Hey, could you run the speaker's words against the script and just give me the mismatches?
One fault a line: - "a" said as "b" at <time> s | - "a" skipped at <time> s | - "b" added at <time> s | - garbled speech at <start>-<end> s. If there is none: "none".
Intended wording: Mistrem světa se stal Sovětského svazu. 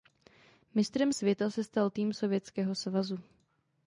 - "tým" added at 1.9 s